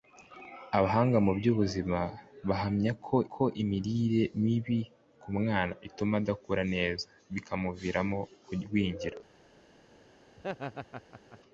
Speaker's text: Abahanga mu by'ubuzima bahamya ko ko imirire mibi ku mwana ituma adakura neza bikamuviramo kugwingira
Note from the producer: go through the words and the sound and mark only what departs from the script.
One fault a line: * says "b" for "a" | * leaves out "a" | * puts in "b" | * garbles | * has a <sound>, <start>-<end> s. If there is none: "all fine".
* has a laugh, 10.4-11.4 s